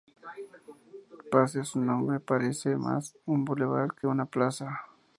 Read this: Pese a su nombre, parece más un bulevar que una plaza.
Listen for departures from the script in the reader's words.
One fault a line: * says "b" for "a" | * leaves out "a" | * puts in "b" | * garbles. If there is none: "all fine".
all fine